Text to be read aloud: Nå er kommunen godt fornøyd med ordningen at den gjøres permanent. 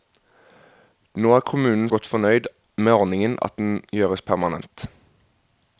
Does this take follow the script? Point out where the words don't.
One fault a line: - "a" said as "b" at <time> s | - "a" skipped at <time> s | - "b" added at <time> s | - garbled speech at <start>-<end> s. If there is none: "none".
none